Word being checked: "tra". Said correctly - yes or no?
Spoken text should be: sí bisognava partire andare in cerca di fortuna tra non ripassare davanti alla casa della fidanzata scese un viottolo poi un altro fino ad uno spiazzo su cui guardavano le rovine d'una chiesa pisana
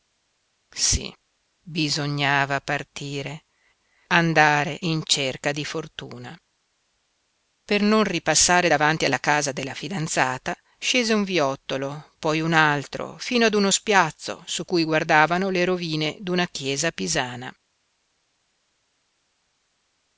no